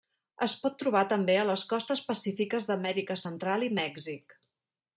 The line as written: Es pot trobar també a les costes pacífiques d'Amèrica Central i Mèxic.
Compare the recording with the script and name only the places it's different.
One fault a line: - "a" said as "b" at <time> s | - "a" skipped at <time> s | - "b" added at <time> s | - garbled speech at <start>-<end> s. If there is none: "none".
none